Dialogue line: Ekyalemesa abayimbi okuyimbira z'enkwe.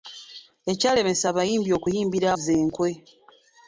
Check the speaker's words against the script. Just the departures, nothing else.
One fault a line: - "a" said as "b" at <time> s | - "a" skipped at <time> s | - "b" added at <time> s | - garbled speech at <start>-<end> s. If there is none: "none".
none